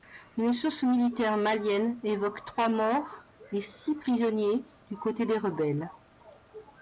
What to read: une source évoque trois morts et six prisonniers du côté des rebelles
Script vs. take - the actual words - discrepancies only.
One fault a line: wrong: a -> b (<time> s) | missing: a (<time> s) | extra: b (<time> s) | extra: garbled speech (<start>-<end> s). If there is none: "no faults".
extra: militaire malienne (0.8 s)